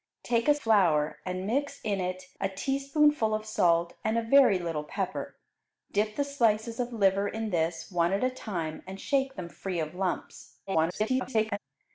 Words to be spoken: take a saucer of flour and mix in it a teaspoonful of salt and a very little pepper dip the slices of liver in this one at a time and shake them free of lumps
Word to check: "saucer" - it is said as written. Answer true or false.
false